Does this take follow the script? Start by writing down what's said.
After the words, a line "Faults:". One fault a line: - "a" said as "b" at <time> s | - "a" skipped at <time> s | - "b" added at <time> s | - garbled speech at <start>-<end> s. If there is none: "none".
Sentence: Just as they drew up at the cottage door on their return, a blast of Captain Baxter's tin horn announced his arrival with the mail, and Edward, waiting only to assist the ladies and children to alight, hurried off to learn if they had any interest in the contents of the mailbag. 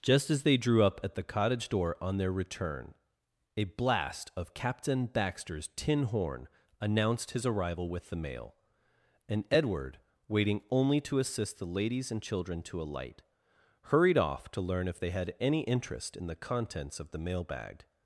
Just as they drew up at the cottage door on their return, a blast of Captain Baxter's tin horn announced his arrival with the mail, and Edward, waiting only to assist the ladies and children to alight, hurried off to learn if they had any interest in the contents of the mailbag.
Faults:
none